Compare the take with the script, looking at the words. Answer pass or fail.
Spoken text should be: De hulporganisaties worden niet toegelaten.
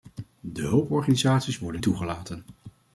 fail